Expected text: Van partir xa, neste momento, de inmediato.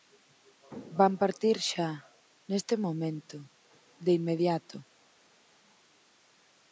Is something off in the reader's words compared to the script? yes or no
no